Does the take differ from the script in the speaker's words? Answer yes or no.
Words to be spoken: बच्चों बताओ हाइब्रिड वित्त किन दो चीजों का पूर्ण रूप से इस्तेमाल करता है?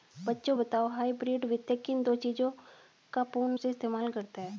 yes